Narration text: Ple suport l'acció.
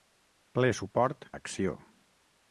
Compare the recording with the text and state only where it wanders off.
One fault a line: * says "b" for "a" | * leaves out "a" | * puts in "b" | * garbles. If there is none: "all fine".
all fine